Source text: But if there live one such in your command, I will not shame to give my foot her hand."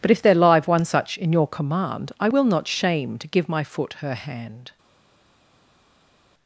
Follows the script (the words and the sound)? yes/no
yes